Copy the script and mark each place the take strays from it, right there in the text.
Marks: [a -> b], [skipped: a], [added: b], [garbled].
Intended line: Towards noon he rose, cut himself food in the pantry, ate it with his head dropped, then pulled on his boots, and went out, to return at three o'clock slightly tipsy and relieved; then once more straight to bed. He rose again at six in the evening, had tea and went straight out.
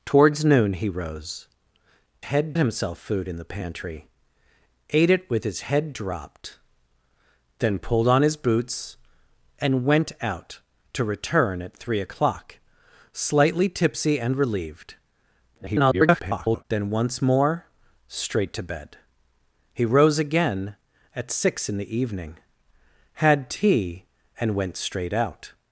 Towards noon he rose, [cut -> head] himself food in the pantry, ate it with his head dropped, then pulled on his boots, and went out, to return at three o'clock slightly tipsy and relieved; [garbled] then once more straight to bed. He rose again at six in the evening, had tea and went straight out.